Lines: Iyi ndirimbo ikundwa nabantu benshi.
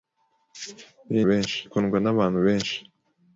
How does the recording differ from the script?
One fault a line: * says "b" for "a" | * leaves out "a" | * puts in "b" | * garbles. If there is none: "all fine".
* says "benshi" for "ndirimbo"